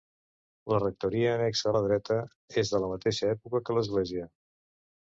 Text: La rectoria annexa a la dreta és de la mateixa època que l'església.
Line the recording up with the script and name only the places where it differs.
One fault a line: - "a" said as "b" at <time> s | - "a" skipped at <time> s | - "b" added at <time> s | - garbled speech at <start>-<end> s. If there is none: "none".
none